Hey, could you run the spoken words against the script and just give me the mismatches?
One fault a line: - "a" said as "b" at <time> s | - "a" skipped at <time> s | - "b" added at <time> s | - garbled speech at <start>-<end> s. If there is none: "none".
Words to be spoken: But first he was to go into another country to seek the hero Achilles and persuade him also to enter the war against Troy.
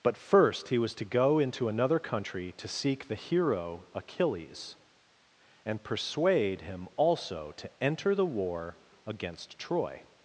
none